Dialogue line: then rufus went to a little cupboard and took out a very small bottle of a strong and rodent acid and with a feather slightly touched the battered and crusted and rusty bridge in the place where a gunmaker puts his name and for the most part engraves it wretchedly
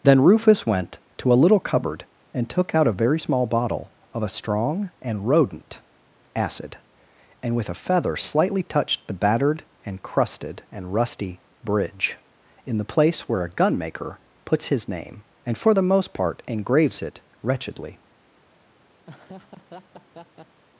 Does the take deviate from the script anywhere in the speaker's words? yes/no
no